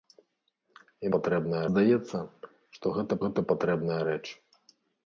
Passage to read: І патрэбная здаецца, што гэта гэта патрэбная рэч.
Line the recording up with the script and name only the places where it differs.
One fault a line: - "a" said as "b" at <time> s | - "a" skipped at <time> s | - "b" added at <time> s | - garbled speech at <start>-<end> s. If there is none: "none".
none